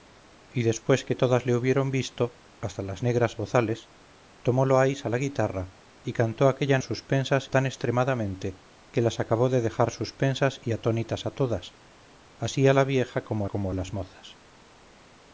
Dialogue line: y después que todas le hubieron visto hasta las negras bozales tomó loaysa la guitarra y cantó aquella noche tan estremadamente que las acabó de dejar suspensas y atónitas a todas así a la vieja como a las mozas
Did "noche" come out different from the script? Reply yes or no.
yes